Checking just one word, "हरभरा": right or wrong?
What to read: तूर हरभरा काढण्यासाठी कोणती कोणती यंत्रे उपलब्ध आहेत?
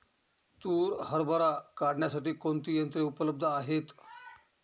right